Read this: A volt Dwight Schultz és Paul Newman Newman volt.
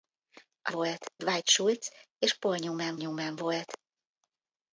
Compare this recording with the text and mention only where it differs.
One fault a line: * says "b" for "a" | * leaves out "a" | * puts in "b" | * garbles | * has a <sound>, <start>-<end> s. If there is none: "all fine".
all fine